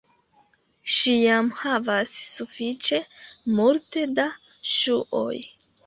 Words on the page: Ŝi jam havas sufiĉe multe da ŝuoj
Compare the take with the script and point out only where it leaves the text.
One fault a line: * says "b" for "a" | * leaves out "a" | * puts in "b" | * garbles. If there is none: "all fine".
all fine